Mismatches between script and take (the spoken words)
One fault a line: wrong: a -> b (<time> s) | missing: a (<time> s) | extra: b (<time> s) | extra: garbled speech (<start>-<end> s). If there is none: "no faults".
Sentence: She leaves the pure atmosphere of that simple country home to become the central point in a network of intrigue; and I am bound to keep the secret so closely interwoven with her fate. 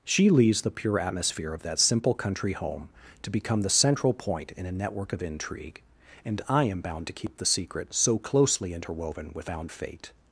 wrong: her -> bound (9.4 s)